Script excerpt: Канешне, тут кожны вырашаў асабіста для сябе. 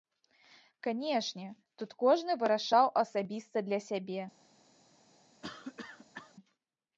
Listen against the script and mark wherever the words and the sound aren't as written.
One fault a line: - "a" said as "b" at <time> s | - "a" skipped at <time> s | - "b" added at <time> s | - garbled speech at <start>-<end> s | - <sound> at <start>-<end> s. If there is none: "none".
- cough at 5.4-6.3 s